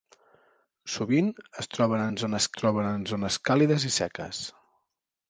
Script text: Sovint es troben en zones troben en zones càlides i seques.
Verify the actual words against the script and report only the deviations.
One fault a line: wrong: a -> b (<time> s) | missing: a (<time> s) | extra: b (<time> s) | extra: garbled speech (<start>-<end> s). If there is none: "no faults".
no faults